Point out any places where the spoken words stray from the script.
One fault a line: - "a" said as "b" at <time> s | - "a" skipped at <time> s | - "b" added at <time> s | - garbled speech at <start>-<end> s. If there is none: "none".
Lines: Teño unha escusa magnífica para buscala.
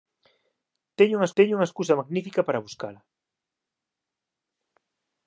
- "teño unha" added at 1.4 s